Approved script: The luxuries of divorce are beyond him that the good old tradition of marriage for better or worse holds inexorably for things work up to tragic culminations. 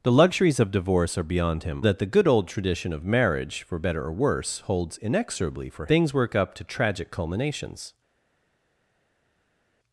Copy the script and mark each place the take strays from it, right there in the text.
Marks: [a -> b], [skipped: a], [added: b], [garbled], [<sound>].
The luxuries of divorce are beyond him that the good old tradition of marriage for better or worse holds inexorably for things work up to tragic culminations.